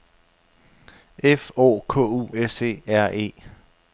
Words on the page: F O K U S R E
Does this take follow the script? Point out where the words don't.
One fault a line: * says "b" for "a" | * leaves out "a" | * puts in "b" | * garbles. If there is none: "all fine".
* puts in "E"